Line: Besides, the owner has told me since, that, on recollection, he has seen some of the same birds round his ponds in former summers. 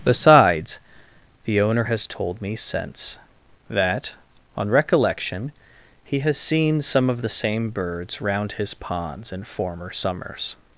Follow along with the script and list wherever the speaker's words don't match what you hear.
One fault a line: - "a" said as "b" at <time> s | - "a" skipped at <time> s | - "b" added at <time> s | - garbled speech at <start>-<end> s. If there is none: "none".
none